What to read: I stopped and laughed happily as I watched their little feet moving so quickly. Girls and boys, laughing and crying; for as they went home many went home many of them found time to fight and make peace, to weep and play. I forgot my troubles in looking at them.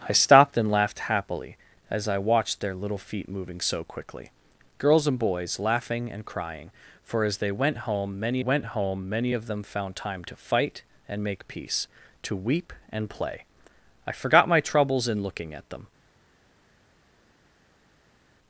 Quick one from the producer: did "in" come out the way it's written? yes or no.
yes